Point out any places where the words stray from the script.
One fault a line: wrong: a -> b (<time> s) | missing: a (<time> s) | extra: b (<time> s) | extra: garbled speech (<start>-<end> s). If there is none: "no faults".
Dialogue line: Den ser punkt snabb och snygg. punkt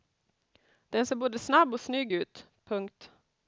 wrong: punkt -> både (1.1 s)
extra: ut (2.1 s)